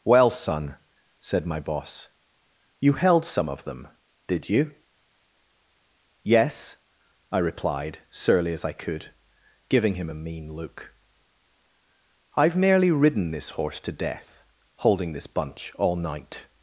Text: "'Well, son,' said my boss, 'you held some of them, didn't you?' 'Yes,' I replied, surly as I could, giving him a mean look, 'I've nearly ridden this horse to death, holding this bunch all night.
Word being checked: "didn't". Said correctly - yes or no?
no